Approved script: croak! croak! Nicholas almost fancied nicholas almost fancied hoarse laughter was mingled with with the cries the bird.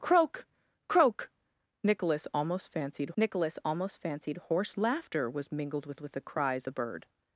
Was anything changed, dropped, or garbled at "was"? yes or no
no